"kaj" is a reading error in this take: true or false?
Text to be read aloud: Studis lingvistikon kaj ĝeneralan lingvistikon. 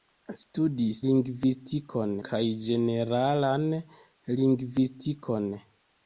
false